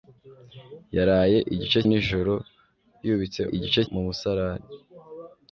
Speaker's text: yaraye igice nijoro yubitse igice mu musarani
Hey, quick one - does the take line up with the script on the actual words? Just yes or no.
yes